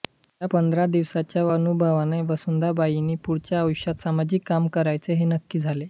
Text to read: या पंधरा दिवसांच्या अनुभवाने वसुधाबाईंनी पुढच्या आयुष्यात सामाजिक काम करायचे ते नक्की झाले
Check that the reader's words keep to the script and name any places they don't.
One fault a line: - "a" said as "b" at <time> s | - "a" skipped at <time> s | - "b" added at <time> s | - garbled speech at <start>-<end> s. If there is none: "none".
- "ते" said as "हे" at 5.1 s